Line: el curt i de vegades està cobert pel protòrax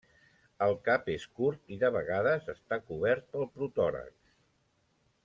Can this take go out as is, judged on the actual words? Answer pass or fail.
fail